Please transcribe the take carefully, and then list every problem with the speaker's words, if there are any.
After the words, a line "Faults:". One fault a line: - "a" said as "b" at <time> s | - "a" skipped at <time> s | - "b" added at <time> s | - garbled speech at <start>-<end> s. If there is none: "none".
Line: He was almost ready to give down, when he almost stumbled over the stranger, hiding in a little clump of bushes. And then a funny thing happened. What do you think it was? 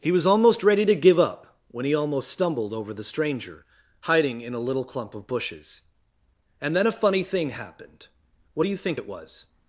He was almost ready to give up, when he almost stumbled over the stranger, hiding in a little clump of bushes. And then a funny thing happened. What do you think it was?
Faults:
- "down" said as "up" at 1.2 s